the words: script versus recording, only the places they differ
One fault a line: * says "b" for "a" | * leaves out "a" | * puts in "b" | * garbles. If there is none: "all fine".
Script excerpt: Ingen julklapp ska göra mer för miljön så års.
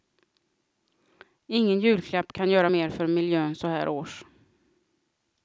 * says "kan" for "ska"
* puts in "här"